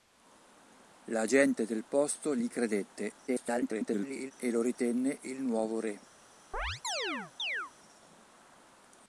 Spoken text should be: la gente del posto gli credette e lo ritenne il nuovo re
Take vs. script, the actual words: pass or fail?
fail